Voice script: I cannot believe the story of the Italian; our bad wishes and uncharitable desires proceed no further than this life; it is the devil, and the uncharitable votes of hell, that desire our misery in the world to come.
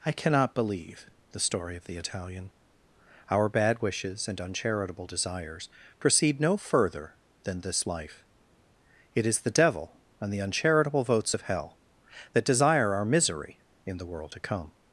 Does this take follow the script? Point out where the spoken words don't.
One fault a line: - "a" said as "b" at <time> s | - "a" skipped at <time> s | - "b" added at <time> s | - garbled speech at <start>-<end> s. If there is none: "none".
none